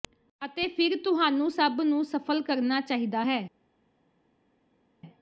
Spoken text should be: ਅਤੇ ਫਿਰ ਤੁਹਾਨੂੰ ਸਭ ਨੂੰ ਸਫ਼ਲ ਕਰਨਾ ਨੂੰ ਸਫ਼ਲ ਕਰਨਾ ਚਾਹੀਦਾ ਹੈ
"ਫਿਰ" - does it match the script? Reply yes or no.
yes